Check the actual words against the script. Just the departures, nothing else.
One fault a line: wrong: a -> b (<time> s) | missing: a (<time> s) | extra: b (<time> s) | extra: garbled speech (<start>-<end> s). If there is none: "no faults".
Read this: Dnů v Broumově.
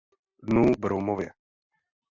no faults